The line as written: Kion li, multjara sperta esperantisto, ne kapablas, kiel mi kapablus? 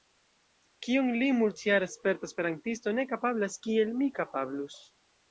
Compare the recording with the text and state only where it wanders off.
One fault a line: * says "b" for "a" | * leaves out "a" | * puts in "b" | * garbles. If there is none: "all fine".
all fine